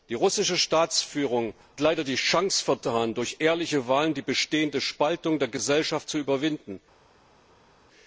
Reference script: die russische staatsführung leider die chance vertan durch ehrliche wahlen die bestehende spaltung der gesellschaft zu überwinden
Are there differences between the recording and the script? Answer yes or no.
no